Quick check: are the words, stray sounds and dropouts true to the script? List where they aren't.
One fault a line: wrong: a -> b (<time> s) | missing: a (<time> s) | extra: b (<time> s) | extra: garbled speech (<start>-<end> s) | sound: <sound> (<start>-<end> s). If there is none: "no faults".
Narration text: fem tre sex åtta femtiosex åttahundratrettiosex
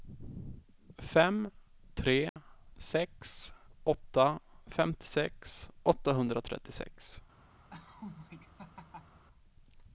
sound: dropout (2.3-2.4 s)
sound: laugh (7.7-9.2 s)